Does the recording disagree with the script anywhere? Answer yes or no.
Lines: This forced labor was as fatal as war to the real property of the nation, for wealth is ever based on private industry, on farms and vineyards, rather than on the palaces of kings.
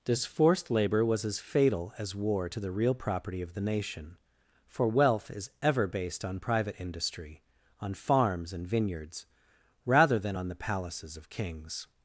no